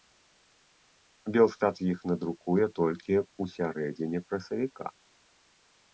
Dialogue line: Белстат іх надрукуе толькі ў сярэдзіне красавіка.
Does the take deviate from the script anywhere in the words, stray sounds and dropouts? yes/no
no